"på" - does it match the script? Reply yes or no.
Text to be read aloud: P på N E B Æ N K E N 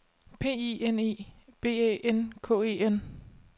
no